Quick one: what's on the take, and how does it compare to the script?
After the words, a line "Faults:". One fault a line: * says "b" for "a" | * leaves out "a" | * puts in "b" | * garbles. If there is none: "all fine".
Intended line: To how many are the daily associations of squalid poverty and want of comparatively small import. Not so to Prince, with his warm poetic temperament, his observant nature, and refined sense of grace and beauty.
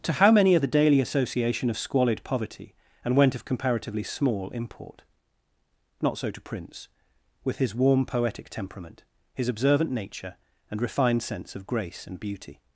To how many are the daily association of squalid poverty and went of comparatively small import. Not so to Prince, with his warm poetic temperament, his observant nature, and refined sense of grace and beauty.
Faults:
* says "association" for "associations"
* says "went" for "want"